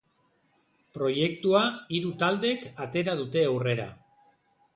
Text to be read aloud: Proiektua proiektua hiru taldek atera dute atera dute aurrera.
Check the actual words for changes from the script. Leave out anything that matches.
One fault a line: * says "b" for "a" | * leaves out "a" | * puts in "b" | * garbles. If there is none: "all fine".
* leaves out "proiektua"
* leaves out "atera dute"